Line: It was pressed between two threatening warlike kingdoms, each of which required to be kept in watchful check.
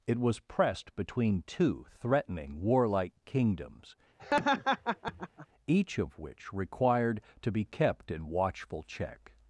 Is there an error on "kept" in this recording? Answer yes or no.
no